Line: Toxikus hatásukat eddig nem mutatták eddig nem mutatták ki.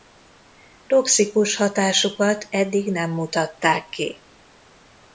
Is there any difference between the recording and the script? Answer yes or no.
yes